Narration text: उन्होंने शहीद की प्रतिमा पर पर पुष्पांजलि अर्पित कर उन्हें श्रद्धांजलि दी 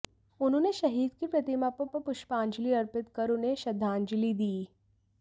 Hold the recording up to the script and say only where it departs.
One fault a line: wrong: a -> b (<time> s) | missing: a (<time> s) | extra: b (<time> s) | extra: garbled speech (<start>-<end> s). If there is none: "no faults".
no faults